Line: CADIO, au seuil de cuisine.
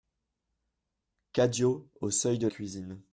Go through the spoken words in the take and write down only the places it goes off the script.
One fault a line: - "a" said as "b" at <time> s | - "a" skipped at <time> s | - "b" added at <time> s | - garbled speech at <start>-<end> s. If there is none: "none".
none